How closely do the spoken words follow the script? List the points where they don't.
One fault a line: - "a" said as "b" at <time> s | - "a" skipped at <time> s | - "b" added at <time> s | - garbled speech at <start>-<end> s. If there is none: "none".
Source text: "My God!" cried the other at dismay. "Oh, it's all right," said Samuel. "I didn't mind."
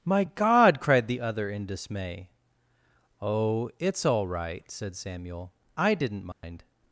- "at" said as "in" at 1.5 s